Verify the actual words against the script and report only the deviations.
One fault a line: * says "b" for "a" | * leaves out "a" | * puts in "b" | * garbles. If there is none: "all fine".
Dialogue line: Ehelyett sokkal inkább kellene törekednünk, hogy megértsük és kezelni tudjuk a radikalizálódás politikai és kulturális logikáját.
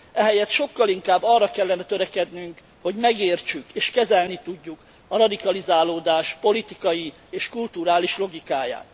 * puts in "arra"